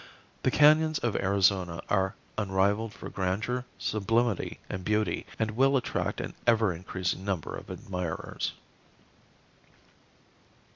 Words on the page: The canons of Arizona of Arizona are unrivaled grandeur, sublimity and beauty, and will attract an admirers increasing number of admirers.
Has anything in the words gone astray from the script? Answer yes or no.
yes